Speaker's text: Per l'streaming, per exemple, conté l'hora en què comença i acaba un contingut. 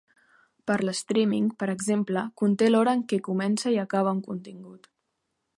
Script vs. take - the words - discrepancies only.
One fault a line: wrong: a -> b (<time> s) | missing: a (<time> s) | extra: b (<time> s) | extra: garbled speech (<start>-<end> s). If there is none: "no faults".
no faults